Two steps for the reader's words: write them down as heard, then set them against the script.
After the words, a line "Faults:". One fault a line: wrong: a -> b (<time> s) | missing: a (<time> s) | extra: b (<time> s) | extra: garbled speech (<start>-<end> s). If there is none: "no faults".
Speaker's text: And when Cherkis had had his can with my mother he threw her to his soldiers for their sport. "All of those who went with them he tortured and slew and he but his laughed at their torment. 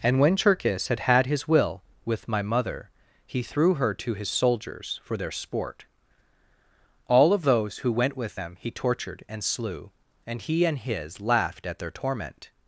And when Cherkis had had his will with my mother he threw her to his soldiers for their sport. "All of those who went with them he tortured and slew and he and his laughed at their torment.
Faults:
wrong: can -> will (1.5 s)
wrong: but -> and (10.6 s)